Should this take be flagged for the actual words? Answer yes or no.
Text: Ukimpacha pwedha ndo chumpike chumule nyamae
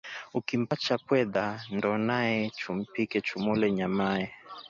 yes